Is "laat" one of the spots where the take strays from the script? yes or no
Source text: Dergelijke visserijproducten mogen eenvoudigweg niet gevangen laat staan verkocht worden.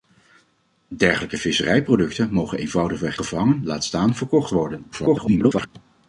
no